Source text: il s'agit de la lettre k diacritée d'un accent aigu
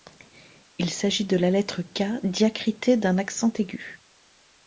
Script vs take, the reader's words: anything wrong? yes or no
no